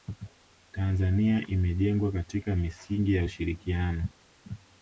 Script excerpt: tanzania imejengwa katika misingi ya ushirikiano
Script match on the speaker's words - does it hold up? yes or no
yes